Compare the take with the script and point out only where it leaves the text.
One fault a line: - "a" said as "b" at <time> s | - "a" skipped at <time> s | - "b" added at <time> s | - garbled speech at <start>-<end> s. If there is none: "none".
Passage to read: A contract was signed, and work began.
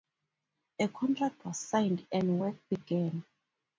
none